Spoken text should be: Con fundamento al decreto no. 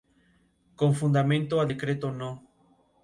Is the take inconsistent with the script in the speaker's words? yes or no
no